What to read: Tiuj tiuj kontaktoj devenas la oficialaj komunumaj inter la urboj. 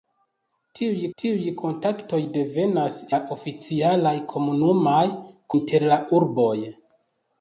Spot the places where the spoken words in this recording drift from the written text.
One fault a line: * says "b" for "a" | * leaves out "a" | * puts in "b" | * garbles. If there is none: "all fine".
all fine